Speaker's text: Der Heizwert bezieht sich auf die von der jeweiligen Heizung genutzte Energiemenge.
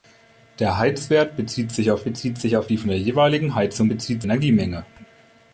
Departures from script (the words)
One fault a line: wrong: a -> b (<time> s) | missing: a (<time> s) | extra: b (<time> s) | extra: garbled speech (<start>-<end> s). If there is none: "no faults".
extra: bezieht sich auf (2.0 s)
wrong: genutzte -> bezieht (3.9 s)